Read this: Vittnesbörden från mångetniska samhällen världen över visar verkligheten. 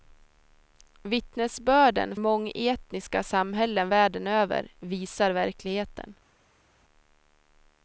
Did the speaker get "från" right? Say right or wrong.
wrong